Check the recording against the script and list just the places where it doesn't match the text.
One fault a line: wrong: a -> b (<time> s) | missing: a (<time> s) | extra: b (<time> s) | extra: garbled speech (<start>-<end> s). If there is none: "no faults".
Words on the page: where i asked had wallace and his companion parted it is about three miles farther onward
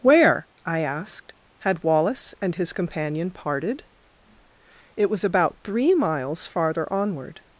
wrong: is -> was (5.1 s)